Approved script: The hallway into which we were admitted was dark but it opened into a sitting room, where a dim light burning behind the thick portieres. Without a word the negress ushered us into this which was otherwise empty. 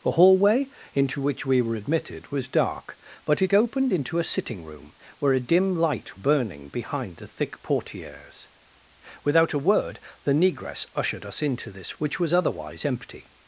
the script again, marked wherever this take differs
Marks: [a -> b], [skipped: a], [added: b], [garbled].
The hallway into which we were admitted was dark but it opened into a sitting room, where a dim light burning behind the thick portieres. Without a word the negress ushered us into this which was otherwise empty.